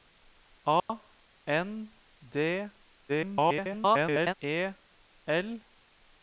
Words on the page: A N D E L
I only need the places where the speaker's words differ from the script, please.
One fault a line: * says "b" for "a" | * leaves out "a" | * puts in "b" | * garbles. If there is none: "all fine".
* garbles